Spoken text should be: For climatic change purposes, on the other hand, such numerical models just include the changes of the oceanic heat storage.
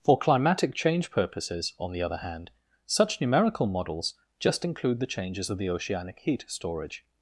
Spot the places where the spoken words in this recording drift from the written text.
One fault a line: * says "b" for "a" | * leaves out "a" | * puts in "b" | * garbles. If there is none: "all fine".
all fine